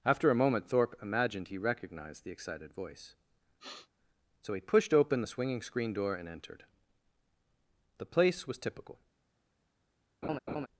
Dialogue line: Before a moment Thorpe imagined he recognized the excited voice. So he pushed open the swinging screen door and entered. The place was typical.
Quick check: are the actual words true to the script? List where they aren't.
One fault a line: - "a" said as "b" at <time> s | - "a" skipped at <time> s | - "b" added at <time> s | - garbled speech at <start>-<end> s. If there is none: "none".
- "Before" said as "After" at 0.0 s